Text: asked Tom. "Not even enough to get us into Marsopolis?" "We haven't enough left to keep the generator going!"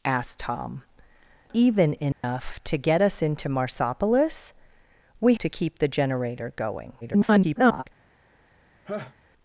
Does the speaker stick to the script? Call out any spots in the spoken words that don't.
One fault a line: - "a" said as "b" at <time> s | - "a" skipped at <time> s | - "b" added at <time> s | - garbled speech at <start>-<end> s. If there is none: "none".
- "Not" skipped at 0.8 s
- "haven't enough left" skipped at 5.3 s
- garbled speech at 7.0-7.8 s